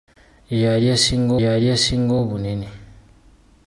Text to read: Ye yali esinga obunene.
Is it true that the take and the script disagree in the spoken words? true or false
true